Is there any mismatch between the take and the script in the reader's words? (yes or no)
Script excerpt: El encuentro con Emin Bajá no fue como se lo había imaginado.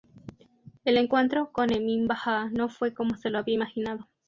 no